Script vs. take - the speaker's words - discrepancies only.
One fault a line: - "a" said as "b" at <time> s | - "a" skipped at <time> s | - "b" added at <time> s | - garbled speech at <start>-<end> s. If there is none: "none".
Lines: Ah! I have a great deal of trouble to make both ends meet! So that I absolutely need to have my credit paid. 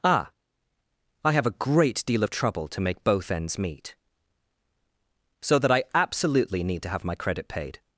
none